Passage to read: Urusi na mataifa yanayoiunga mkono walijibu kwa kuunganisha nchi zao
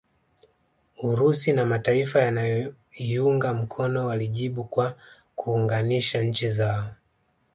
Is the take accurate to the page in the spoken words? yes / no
yes